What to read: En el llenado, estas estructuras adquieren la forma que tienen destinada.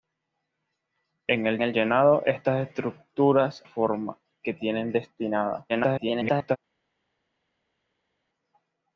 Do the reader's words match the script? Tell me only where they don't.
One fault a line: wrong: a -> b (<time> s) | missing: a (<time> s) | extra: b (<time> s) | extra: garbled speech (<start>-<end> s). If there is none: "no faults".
extra: el (1.6 s)
missing: adquieren la (3.6 s)
extra: garbled speech (5.7-6.6 s)